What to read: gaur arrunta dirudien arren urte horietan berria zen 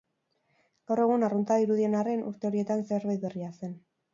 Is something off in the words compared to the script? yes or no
yes